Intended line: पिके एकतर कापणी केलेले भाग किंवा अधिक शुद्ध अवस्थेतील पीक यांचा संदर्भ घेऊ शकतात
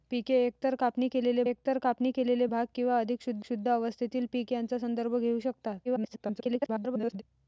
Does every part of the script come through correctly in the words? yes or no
no